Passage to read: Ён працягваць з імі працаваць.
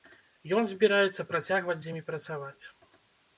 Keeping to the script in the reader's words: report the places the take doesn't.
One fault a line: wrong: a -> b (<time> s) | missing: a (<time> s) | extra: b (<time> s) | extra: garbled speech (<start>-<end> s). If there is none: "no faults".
extra: збіраецца (0.7 s)